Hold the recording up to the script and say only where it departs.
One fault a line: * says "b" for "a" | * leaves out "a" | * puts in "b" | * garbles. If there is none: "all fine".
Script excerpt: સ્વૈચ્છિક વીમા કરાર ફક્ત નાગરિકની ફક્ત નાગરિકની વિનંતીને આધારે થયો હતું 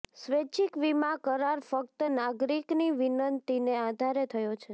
* leaves out "ફક્ત નાગરિકની"
* says "છે" for "હતું"